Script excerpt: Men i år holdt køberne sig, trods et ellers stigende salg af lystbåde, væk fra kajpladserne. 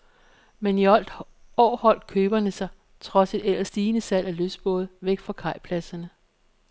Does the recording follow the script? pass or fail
pass